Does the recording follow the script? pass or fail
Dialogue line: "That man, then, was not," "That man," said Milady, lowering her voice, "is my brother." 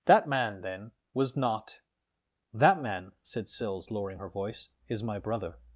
fail